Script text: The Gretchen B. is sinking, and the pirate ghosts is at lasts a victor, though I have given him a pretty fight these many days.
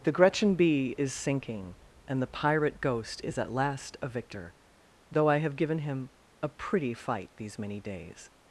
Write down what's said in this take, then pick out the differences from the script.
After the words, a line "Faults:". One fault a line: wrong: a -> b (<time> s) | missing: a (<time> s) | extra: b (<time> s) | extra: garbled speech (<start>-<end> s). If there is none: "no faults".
The Gretchen B. is sinking, and the pirate ghost is at last a victor, though I have given him a pretty fight these many days.
Faults:
wrong: ghosts -> ghost (2.8 s)
wrong: lasts -> last (3.5 s)